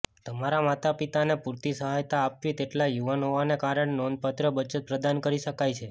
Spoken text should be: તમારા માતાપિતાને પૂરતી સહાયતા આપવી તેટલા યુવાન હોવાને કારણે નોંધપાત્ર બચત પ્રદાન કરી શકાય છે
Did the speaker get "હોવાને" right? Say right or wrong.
right